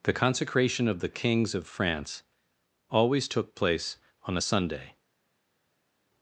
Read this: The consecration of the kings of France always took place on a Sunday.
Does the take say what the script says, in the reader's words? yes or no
yes